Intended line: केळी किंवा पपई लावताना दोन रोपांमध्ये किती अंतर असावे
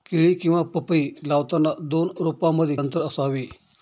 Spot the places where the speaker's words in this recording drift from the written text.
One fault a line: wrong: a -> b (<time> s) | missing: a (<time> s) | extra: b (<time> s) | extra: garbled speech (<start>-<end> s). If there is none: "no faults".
missing: किती (2.8 s)